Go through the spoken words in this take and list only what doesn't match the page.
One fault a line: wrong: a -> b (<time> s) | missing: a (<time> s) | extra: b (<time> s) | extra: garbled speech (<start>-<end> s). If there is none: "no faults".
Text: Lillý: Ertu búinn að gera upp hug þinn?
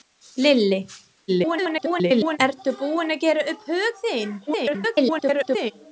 extra: garbled speech (1.3-2.4 s)
extra: garbled speech (4.5-5.7 s)